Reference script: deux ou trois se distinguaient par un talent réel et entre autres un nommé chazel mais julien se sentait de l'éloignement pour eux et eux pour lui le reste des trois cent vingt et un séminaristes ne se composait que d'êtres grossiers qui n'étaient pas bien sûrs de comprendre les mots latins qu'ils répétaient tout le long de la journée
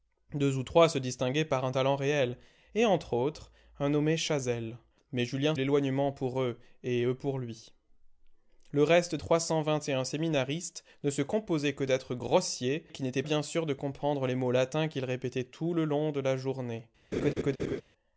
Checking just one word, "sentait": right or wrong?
wrong